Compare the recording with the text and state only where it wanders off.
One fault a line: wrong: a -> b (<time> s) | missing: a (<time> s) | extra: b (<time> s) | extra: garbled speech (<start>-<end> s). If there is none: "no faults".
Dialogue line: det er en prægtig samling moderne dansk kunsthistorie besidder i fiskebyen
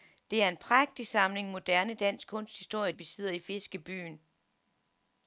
no faults